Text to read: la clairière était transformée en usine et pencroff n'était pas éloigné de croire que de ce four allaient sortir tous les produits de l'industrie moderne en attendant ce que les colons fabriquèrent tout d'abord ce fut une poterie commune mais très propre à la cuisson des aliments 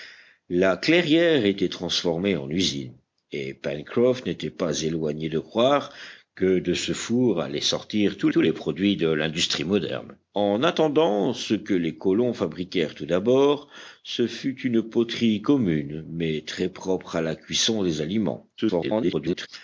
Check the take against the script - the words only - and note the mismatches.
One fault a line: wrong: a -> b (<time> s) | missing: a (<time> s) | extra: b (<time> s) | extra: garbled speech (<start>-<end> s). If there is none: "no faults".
extra: tous (8.3 s)
extra: garbled speech (18.6-19.5 s)